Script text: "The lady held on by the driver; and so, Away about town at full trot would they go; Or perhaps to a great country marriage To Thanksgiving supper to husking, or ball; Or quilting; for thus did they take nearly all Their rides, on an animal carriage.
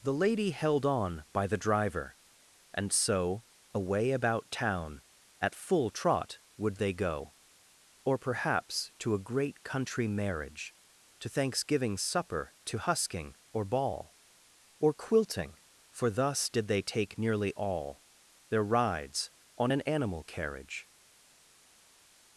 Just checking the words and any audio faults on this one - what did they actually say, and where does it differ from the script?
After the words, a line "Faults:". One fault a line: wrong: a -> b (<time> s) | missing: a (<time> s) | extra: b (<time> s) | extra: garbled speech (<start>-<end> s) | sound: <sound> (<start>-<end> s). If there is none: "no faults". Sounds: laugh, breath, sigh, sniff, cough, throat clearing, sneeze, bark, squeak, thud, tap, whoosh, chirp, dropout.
"The lady held on by the driver; and so, Away about town at full trot would they go; Or perhaps to a great country marriage To Thanksgiving supper to husking, or ball; Or quilting; for thus did they take nearly all Their rides, on an animal carriage.
Faults:
no faults